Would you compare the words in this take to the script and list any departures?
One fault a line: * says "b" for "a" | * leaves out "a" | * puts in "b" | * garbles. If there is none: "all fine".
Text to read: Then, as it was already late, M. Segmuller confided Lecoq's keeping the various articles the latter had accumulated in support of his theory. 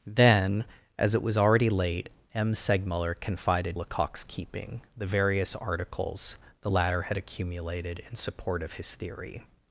all fine